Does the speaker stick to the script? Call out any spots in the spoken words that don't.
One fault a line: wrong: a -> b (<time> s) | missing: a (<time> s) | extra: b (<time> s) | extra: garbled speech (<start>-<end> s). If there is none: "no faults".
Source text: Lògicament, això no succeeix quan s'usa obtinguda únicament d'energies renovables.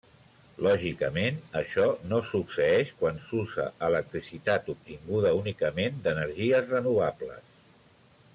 extra: electricitat (3.9 s)